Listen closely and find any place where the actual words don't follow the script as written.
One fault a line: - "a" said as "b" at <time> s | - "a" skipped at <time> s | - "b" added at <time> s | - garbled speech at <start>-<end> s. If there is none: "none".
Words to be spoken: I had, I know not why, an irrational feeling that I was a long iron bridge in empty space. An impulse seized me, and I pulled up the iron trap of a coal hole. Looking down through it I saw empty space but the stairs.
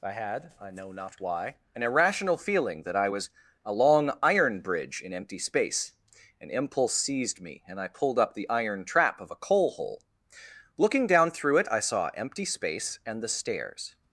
- "but" said as "and" at 13.0 s